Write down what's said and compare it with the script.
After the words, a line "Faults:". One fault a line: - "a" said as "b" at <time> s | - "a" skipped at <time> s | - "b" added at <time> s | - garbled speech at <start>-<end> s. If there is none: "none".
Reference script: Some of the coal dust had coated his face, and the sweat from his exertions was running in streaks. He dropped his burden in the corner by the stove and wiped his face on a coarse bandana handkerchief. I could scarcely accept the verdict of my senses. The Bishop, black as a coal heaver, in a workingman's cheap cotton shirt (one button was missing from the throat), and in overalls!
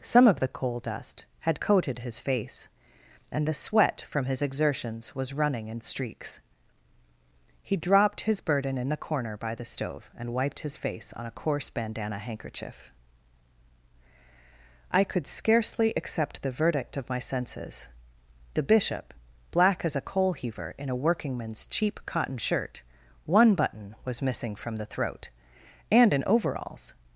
Some of the coal dust had coated his face, and the sweat from his exertions was running in streaks. He dropped his burden in the corner by the stove and wiped his face on a coarse bandana handkerchief. I could scarcely accept the verdict of my senses. The Bishop, black as a coal heaver, in a workingman's cheap cotton shirt (one button was missing from the throat), and in overalls!
Faults:
none